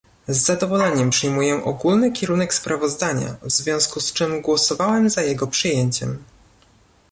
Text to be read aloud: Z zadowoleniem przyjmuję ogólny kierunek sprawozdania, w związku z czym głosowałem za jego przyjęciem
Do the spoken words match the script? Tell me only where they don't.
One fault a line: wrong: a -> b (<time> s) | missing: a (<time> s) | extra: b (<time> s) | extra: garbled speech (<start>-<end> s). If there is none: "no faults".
no faults